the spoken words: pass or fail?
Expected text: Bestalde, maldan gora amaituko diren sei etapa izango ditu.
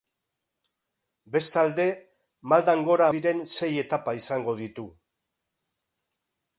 fail